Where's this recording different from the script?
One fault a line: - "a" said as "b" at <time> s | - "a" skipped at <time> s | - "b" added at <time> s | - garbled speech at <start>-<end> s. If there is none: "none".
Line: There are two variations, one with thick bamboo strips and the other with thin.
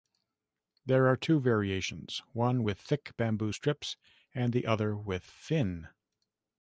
none